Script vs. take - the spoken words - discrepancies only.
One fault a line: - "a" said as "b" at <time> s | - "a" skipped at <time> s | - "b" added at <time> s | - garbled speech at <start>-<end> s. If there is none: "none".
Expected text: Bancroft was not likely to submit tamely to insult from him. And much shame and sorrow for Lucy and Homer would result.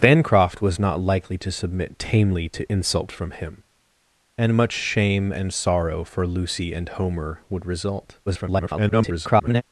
- garbled speech at 8.3-9.6 s